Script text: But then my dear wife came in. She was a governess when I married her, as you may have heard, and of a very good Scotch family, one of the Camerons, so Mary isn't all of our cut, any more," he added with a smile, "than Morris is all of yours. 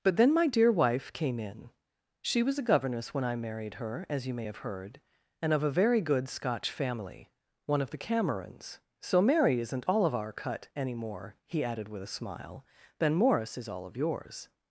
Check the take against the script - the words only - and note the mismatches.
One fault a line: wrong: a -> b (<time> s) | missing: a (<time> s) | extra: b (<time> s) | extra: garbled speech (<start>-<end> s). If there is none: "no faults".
no faults